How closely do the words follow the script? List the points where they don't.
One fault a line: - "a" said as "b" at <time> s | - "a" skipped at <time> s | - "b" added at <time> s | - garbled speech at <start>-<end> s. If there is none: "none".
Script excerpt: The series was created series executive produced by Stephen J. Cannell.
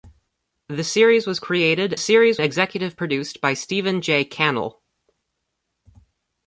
none